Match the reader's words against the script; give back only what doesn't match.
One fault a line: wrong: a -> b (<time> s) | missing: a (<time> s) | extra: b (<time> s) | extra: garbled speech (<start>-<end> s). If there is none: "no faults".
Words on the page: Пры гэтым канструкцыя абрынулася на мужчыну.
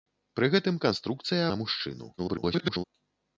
missing: абрынулася (1.4 s)
extra: garbled speech (2.2-2.8 s)